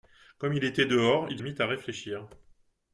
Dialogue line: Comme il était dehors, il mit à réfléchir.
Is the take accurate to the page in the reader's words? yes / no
yes